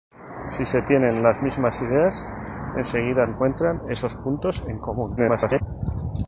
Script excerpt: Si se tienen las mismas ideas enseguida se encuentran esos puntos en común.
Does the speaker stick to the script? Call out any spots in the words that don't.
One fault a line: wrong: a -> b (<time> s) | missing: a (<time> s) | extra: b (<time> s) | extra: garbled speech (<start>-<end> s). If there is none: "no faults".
missing: se (3.3 s)
extra: garbled speech (5.2-5.6 s)